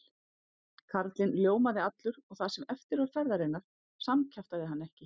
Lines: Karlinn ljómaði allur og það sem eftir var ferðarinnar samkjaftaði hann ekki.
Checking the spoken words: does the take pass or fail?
pass